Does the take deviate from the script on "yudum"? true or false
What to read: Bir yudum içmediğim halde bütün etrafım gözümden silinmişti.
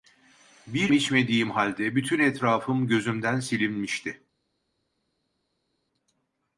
true